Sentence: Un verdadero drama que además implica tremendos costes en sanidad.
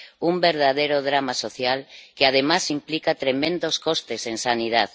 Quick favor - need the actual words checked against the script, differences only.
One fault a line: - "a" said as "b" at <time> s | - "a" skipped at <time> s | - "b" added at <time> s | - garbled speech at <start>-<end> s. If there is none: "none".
- "social" added at 1.3 s